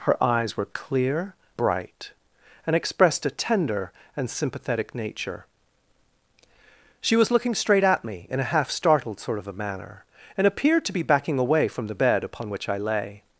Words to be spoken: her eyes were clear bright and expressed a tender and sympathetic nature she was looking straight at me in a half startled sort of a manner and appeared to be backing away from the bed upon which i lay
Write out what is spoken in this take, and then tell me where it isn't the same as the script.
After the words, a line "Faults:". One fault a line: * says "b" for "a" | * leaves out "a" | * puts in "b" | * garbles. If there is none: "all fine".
her eyes were clear bright and expressed a tender and sympathetic nature she was looking straight at me in a half startled sort of a manner and appeared to be backing away from the bed upon which i lay
Faults:
all fine